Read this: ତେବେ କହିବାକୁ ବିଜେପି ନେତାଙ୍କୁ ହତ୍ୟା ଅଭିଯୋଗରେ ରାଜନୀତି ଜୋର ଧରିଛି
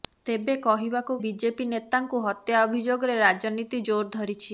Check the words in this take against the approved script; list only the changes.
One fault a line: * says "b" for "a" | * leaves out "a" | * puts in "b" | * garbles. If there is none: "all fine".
all fine